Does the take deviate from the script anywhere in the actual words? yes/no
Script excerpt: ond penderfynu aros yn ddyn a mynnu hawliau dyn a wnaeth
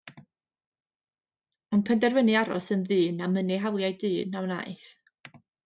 no